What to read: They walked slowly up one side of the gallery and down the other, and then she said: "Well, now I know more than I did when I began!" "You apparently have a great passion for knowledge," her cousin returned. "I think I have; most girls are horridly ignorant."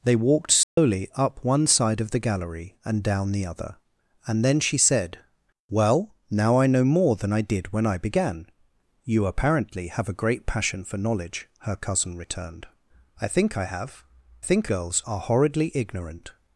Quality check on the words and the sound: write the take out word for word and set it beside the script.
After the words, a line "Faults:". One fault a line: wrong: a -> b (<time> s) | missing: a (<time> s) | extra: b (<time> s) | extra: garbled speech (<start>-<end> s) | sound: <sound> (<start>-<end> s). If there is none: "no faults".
They walked slowly up one side of the gallery and down the other, and then she said: "Well, now I know more than I did when I began!" "You apparently have a great passion for knowledge," her cousin returned. "I think I have; think girls are horridly ignorant."
Faults:
sound: dropout (0.6-0.8 s)
wrong: most -> think (14.4 s)